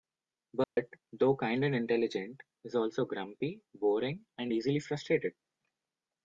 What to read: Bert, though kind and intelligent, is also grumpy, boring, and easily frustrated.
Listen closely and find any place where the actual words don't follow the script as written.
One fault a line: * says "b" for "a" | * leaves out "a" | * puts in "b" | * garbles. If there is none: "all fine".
all fine